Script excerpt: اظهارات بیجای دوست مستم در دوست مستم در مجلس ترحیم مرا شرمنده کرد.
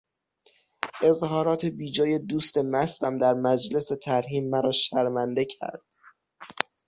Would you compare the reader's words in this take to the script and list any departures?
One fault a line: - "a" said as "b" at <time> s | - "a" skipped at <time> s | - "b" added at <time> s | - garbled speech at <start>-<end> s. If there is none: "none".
- "دوست مستم در" skipped at 3.3 s